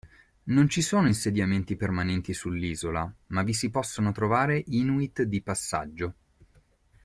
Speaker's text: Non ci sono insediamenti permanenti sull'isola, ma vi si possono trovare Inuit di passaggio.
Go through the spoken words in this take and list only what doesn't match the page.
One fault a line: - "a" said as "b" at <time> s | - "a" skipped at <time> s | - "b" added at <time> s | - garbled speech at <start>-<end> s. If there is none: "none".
none